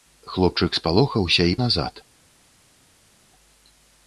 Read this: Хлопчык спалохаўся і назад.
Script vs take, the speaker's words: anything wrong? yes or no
no